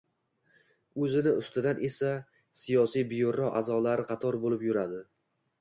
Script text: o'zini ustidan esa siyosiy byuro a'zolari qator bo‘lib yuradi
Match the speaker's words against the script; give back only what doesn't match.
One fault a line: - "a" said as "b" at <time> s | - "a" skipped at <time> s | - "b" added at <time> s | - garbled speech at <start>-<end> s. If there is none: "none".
none